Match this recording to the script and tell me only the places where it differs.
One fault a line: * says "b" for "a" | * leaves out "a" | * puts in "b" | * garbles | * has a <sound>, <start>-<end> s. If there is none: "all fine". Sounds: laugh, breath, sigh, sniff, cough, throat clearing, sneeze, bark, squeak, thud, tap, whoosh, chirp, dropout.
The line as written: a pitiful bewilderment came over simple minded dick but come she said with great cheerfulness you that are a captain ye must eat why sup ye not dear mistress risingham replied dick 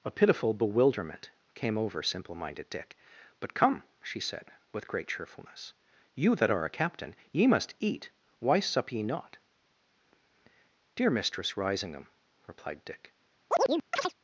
* has a chirp, 13.5-14.1 s